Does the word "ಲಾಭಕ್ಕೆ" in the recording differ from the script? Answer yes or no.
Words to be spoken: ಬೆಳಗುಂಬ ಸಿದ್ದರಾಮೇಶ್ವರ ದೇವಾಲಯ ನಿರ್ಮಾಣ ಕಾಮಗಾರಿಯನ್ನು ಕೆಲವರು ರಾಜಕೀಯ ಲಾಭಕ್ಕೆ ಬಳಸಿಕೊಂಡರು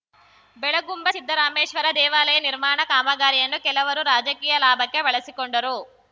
no